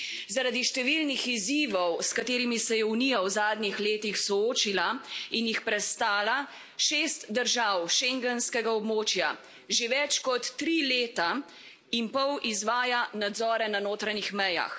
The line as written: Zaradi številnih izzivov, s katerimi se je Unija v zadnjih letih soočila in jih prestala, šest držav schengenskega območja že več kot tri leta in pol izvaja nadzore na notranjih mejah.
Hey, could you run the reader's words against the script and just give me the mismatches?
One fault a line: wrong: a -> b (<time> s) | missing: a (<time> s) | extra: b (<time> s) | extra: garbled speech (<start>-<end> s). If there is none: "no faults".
no faults